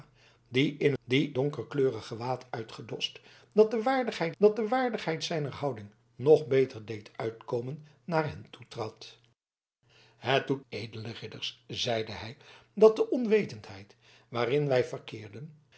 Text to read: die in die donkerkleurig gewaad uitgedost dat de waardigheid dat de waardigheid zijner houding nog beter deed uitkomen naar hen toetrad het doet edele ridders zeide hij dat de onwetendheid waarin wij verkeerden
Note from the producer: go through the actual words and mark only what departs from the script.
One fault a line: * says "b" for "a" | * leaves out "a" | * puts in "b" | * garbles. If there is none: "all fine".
all fine